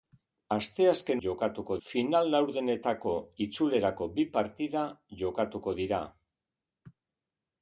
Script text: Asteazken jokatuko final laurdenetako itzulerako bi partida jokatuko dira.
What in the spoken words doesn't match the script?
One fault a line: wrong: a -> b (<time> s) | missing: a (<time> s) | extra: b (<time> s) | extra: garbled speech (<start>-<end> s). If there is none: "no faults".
no faults